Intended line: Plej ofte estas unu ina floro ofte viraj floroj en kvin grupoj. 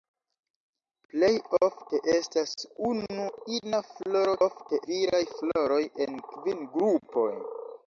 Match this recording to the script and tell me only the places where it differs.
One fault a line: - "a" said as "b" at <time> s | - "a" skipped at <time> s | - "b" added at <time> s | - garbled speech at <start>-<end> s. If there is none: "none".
none